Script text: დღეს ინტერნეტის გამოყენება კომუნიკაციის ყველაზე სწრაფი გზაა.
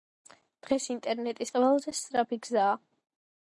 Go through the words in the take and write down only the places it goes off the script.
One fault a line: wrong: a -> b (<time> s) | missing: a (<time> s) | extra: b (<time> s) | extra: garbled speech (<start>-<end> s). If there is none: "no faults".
missing: გამოყენება კომუნიკაციის (1.5 s)